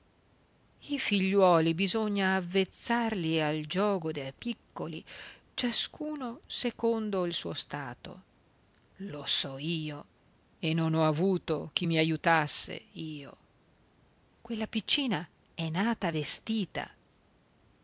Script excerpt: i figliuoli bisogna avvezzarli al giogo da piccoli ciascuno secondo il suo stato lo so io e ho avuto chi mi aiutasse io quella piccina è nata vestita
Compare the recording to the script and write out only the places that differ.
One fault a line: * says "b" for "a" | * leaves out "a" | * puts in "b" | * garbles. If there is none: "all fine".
* puts in "non"